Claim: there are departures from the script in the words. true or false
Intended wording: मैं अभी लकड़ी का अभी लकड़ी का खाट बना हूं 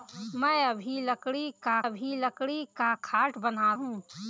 false